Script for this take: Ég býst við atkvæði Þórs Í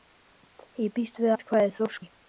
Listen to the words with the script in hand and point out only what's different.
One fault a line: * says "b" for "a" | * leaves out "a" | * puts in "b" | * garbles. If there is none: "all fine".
all fine